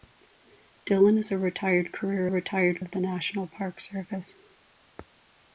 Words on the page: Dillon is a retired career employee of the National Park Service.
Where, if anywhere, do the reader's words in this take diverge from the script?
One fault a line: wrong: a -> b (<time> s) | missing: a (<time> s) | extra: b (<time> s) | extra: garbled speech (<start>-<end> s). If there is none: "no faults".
wrong: employee -> retired (2.3 s)